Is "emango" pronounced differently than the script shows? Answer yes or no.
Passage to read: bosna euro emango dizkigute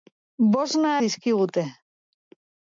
yes